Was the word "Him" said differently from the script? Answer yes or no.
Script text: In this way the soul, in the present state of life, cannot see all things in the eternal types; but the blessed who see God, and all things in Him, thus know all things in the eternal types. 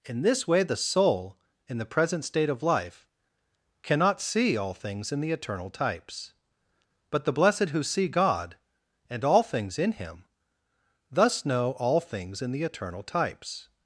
no